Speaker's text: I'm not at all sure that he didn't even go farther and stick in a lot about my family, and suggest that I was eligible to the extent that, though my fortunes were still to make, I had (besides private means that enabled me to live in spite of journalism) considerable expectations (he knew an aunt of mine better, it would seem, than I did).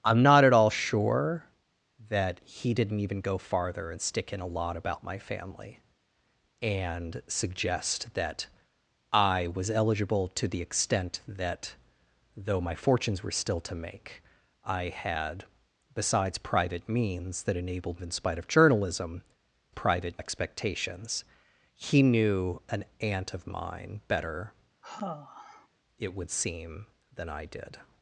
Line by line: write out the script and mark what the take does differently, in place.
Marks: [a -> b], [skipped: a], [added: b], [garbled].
I'm not at all sure that he didn't even go farther and stick in a lot about my family, and suggest that I was eligible to the extent that, though my fortunes were still to make, I had (besides private means that enabled [skipped: me to live] in spite of journalism) [considerable -> private] expectations (he knew an aunt of mine better, it would seem, than I did).